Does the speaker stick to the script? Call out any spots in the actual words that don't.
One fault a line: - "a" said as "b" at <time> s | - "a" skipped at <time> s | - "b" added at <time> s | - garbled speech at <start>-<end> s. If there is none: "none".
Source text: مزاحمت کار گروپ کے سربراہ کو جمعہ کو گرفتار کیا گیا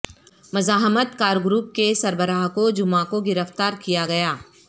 none